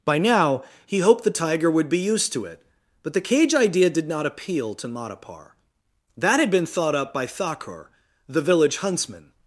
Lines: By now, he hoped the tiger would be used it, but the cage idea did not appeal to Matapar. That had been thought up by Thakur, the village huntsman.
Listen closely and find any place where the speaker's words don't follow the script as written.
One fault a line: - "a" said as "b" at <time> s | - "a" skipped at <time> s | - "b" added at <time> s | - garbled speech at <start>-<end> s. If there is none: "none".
- "to" added at 2.3 s